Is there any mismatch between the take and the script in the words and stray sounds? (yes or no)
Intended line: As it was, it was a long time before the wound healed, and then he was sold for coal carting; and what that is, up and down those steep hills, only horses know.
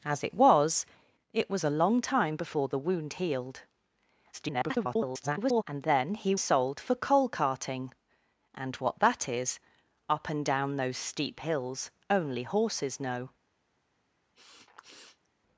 yes